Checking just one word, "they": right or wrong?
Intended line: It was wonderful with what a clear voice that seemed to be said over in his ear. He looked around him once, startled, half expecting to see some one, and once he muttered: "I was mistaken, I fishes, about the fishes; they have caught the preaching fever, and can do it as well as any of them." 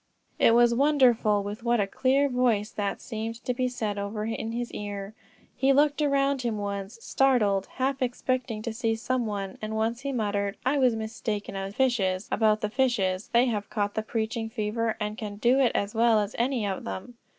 right